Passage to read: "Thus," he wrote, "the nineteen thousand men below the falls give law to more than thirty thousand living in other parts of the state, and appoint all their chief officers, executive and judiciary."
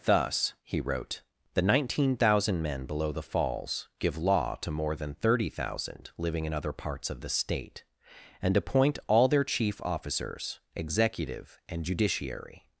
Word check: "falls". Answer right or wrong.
right